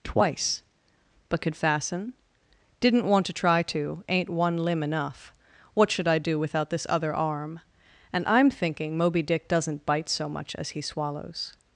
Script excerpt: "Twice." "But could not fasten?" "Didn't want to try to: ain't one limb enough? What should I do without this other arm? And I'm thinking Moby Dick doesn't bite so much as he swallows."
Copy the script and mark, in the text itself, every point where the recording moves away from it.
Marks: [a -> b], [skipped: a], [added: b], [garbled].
"Twice." "But could [skipped: not] fasten?" "Didn't want to try to: ain't one limb enough? What should I do without this other arm? And I'm thinking Moby Dick doesn't bite so much as he swallows."